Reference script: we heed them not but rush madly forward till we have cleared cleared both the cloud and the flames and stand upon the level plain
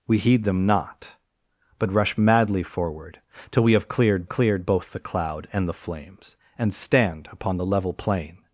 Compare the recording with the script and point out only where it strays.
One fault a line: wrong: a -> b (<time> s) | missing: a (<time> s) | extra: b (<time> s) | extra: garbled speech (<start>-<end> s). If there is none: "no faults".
no faults